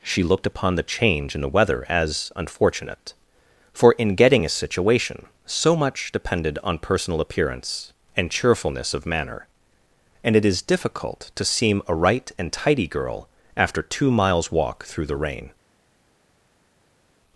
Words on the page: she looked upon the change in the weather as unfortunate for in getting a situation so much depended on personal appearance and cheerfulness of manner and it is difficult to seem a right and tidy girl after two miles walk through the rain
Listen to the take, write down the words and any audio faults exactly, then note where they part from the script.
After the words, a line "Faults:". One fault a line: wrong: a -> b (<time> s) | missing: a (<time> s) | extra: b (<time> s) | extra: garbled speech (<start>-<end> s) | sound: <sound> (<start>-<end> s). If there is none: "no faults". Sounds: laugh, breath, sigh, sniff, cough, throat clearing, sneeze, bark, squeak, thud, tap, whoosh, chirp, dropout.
she looked upon the change in the weather as unfortunate for in getting a situation so much depended on personal appearance and cheerfulness of manner and it is difficult to seem a right and tidy girl after two miles walk through the rain
Faults:
no faults